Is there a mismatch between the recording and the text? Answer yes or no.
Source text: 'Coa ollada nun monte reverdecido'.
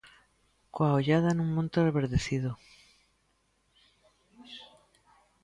no